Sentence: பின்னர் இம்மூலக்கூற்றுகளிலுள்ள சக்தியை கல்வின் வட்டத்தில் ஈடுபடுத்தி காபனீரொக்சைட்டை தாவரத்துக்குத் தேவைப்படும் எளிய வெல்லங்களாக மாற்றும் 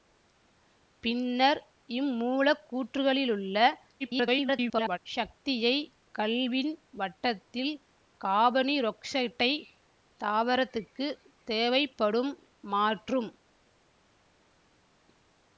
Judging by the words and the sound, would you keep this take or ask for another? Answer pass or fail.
fail